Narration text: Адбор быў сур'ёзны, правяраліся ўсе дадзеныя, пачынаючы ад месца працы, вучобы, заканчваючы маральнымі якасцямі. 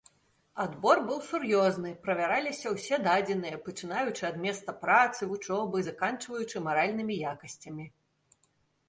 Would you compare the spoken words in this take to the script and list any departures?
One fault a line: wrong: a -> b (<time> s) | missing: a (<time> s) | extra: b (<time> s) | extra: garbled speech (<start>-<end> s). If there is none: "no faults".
no faults